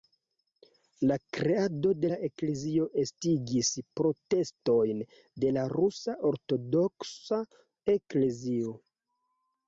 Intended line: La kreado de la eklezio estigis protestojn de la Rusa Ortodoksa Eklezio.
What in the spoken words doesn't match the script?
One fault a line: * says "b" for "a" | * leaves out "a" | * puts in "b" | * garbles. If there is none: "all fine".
all fine